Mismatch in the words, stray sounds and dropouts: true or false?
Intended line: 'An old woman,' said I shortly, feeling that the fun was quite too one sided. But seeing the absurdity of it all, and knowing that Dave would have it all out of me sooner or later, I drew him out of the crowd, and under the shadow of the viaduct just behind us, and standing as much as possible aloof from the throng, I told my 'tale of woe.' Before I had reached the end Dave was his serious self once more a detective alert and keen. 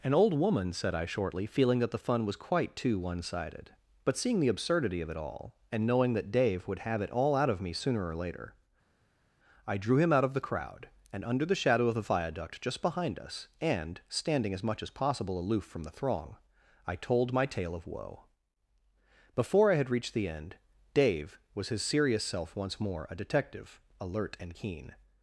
false